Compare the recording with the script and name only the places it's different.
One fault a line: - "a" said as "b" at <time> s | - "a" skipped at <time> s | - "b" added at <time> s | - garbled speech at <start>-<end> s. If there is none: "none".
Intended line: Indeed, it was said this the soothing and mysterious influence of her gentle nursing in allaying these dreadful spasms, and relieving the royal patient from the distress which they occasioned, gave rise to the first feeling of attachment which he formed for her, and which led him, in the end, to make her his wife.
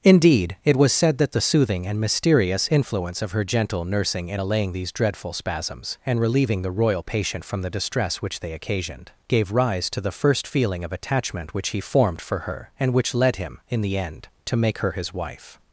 - "this" said as "that" at 1.2 s